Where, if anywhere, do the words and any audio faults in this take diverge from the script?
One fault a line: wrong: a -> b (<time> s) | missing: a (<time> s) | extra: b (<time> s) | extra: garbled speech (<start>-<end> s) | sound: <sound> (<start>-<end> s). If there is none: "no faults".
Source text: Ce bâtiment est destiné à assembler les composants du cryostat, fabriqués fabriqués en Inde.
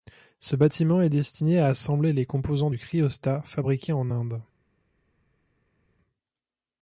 missing: fabriqués (3.9 s)